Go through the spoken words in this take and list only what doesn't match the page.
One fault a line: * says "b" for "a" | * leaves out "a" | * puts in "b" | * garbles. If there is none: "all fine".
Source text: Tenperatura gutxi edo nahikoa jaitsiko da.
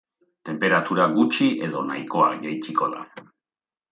all fine